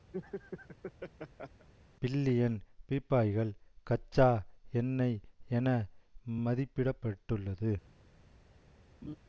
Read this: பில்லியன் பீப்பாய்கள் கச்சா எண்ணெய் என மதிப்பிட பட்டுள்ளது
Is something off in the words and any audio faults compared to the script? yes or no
yes